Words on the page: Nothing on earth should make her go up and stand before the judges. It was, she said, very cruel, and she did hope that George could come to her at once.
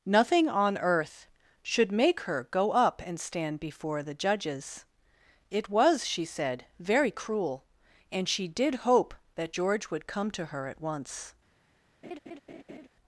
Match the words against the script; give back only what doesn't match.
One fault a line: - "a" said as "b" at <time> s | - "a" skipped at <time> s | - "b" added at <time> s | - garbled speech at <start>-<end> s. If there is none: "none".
- "could" said as "would" at 9.9 s